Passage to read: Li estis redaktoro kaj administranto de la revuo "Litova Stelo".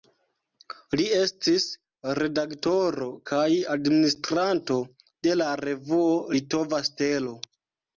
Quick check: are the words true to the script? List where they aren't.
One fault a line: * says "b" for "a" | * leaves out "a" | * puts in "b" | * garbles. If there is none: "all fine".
all fine